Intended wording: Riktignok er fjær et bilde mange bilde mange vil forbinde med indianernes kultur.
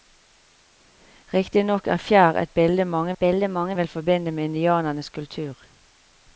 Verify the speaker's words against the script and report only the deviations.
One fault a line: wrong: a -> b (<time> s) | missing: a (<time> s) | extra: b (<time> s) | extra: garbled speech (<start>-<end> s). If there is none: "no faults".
no faults